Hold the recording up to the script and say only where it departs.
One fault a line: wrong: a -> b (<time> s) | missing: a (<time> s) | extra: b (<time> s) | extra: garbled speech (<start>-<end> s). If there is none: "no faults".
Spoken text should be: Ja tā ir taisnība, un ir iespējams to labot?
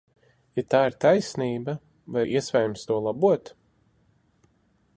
wrong: un -> vai (2.1 s)